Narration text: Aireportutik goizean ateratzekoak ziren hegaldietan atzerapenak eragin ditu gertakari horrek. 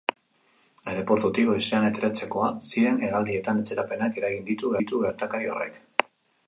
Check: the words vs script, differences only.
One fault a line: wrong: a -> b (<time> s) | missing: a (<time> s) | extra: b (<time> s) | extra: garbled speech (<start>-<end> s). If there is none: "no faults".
extra: ditu (4.8 s)